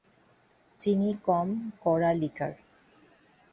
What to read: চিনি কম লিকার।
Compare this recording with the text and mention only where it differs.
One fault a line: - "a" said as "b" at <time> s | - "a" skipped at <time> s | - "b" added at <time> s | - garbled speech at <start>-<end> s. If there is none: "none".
- "কড়া" added at 1.8 s